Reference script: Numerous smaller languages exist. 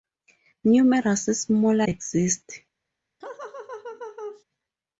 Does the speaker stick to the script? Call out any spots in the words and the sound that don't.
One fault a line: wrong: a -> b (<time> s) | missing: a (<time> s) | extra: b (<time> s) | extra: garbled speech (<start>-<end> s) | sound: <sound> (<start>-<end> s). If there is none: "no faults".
missing: languages (1.9 s)
sound: laugh (3.2-4.4 s)